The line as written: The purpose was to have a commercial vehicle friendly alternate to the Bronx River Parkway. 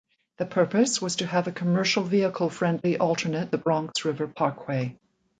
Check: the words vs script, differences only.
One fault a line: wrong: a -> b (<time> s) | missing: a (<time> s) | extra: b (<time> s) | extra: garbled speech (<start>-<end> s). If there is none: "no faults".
missing: to (3.5 s)